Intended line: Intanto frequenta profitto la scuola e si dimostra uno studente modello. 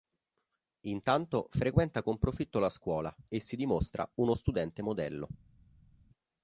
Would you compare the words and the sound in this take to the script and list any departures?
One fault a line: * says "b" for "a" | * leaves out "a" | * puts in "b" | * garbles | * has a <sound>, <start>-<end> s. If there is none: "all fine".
* puts in "con"